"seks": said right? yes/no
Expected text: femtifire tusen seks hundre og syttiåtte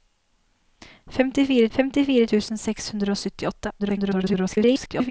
yes